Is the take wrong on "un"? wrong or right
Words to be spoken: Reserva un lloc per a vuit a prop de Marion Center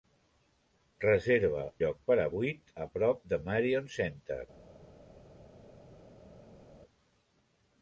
wrong